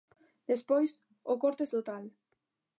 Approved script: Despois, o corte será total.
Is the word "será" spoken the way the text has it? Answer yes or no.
no